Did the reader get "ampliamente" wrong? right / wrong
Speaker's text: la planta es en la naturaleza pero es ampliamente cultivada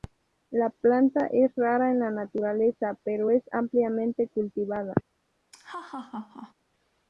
right